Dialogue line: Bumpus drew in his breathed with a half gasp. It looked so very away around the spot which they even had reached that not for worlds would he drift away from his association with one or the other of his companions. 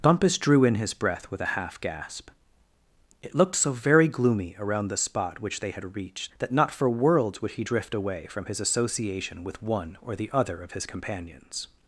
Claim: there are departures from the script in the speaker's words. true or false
true